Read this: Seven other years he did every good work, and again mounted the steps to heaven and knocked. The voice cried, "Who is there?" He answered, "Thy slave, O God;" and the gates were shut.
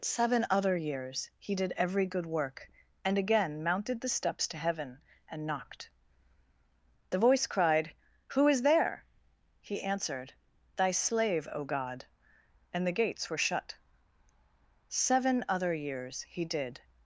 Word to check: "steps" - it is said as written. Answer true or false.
true